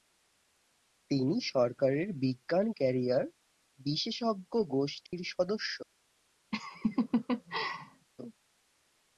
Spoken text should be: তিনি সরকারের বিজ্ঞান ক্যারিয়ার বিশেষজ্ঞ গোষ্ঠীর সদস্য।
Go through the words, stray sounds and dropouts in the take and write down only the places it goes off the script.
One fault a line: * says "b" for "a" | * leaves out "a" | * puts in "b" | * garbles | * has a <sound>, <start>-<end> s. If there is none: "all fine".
* has a dropout, 5.1-5.1 s
* has a laugh, 6.5-8.1 s